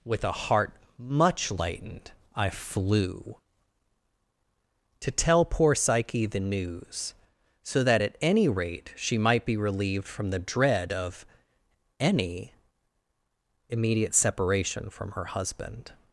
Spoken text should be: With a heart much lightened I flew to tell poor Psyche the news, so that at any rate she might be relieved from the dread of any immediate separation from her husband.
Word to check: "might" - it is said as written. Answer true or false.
true